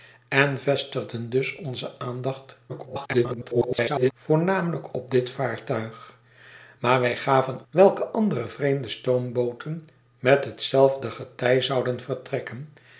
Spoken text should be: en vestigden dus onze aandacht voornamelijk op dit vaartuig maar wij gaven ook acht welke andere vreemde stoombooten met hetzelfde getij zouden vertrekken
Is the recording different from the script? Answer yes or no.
yes